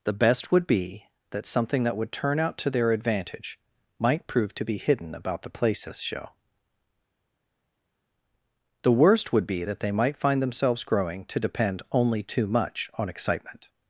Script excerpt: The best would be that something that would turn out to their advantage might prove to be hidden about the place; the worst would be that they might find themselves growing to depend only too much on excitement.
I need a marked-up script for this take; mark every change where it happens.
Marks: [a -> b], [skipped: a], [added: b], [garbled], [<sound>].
The best would be that something that would turn out to their advantage might prove to be hidden about the [place; -> places show] the worst would be that they might find themselves growing to depend only too much on excitement.